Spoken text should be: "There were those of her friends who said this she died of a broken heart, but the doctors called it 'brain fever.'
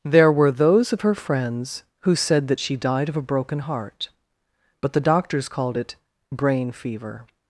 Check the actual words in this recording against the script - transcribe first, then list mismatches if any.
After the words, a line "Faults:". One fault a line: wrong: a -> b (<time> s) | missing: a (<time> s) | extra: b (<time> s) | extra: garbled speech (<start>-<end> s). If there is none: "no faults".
"There were those of her friends who said that she died of a broken heart, but the doctors called it 'brain fever.'
Faults:
wrong: this -> that (2.5 s)